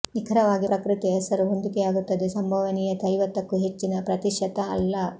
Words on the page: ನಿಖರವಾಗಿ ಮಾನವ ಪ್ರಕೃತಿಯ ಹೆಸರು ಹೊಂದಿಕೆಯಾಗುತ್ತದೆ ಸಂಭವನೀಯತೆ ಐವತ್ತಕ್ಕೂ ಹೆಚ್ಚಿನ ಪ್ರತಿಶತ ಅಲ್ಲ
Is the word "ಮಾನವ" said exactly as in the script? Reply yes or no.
no